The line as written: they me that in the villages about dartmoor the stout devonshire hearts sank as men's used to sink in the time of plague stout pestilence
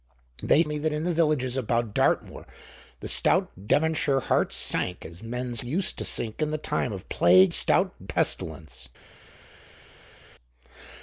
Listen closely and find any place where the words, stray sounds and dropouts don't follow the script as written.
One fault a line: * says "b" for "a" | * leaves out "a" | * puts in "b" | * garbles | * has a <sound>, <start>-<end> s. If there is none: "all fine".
all fine